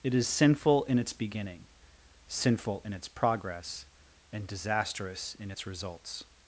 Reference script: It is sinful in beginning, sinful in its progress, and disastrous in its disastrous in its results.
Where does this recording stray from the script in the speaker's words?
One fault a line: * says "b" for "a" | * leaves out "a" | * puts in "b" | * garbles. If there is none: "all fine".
* puts in "its"
* leaves out "disastrous in its"